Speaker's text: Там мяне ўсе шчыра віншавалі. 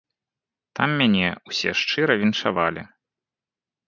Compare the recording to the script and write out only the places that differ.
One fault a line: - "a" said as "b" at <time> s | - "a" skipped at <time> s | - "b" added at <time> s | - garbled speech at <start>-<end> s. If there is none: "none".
none